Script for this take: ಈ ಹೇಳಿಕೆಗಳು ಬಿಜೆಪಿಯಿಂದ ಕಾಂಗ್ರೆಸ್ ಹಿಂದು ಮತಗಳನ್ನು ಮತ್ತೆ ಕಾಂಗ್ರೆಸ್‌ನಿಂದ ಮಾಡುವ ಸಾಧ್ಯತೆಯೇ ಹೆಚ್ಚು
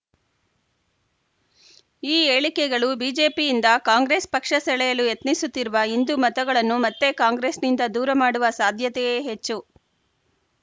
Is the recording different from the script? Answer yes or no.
yes